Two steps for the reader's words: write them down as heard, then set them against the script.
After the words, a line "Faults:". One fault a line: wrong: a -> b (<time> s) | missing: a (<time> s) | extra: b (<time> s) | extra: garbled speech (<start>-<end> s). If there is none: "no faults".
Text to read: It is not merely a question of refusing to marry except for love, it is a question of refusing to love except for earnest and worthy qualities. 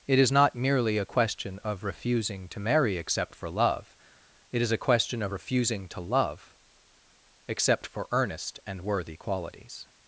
It is not merely a question of refusing to marry except for love, it is a question of refusing to love except for earnest and worthy qualities.
Faults:
no faults